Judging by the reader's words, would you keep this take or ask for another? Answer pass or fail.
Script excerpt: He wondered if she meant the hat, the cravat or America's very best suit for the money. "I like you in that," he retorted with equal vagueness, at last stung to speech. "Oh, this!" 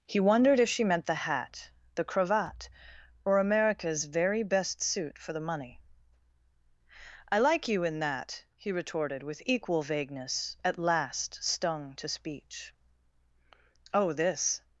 pass